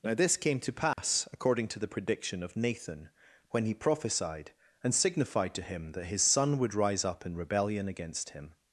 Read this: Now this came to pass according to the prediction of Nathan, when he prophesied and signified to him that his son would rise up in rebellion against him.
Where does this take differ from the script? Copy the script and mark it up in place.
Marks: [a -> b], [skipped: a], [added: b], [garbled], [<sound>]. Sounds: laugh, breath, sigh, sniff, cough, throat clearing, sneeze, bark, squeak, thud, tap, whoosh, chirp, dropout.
Now this came to pass [dropout] according to the prediction of Nathan, when he prophesied and signified to him that his son would rise up in rebellion against him.